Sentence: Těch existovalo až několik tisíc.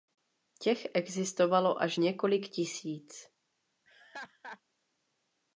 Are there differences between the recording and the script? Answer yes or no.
no